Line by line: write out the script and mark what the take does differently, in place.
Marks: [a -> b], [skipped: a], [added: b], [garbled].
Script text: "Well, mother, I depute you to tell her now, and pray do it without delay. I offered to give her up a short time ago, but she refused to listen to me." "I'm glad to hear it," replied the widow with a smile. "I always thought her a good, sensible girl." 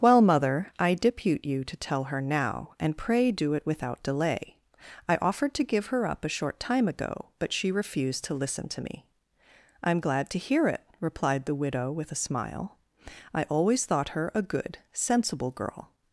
"Well, mother, I depute you to tell her now, and pray do it without delay. I offered to give her up a short time ago, but she refused to listen to me." "I'm glad to hear it," replied the widow with a smile. "I always thought her a good, sensible girl."